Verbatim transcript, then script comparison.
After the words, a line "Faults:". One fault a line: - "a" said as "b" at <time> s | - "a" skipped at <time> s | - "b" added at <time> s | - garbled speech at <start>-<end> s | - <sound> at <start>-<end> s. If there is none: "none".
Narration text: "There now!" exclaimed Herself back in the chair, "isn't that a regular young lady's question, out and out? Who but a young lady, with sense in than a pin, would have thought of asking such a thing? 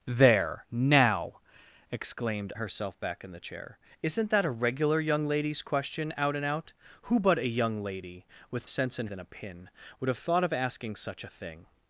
"There now!" exclaimed Herself back in the chair, "isn't that a regular young lady's question, out and out? Who but a young lady, with sense in than a pin, would have thought of asking such a thing?
Faults:
none